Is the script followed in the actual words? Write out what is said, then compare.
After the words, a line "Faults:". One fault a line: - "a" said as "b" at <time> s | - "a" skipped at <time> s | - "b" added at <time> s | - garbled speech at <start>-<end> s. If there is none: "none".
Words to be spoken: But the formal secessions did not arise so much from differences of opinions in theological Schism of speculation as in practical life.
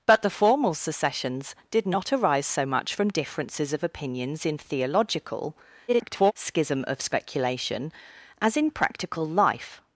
But the formal secessions did not arise so much from differences of opinions in theological [garbled] Schism of speculation as in practical life.
Faults:
- garbled speech at 5.9-6.3 s